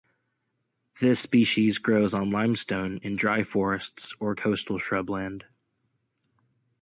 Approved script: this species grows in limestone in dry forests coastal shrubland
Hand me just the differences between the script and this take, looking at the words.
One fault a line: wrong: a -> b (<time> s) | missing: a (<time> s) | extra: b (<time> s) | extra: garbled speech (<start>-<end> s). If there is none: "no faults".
wrong: in -> on (2.1 s)
extra: or (4.2 s)